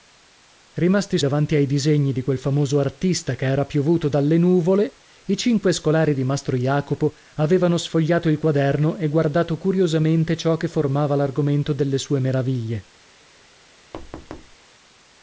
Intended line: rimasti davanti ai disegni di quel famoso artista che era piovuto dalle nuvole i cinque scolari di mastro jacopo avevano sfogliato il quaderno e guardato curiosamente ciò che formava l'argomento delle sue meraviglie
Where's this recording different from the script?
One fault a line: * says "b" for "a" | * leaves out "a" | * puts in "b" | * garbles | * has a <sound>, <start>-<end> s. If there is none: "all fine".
* has a thud, 13.9-14.6 s